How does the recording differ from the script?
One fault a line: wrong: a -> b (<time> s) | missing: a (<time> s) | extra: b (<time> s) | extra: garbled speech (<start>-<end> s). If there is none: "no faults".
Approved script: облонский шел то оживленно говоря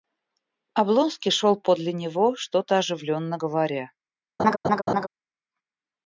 extra: подле него что (1.6 s)